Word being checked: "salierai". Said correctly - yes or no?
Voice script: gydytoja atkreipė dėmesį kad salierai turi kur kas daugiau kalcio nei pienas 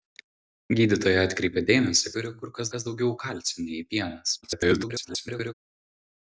no